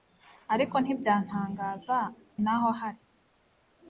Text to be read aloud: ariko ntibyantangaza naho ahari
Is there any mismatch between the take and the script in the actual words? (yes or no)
no